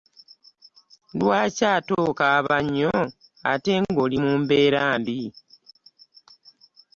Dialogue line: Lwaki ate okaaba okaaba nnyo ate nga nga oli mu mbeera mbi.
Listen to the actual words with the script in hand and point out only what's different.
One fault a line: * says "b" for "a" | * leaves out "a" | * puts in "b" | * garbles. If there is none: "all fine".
* leaves out "okaaba"
* leaves out "nga"